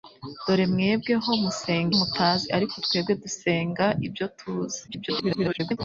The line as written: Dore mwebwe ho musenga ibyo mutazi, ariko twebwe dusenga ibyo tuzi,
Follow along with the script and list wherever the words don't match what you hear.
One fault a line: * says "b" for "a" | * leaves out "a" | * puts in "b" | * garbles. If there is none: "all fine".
* leaves out "ibyo"
* garbles